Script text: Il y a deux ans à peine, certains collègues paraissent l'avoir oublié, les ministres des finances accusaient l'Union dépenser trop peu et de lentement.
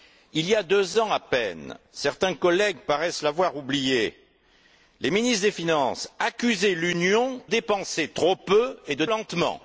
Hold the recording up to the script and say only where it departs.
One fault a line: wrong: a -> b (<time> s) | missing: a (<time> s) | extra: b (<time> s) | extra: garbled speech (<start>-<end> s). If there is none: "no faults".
no faults